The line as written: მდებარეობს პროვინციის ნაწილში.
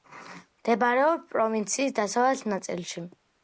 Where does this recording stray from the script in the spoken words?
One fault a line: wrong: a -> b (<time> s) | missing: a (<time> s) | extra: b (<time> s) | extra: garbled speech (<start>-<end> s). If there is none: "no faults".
extra: დასავლეთ (2.0 s)